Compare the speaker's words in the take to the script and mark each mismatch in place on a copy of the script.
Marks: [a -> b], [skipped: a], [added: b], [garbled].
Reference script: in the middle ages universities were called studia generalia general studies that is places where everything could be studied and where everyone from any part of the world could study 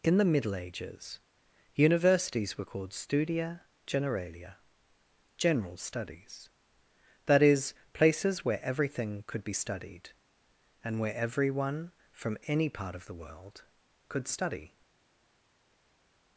in the middle ages universities were called studia generalia general studies that is places where everything could be studied and where everyone from any part of the world could study